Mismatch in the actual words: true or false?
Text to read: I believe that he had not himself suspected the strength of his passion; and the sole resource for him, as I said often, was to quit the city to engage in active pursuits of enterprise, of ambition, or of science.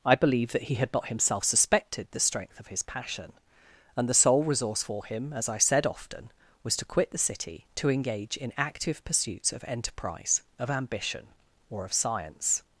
false